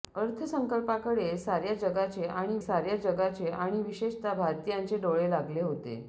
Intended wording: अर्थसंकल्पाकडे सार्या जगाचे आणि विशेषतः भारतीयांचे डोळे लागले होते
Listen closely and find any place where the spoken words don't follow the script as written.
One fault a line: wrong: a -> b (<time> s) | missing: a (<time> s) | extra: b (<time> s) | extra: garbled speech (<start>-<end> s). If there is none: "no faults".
extra: सार्या जगाचे आणि (2.6 s)